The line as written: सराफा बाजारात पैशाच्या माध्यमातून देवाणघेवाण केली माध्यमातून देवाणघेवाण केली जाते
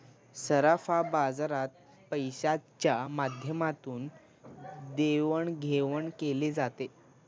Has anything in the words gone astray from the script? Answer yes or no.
yes